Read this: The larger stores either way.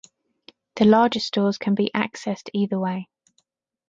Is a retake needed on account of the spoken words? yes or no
yes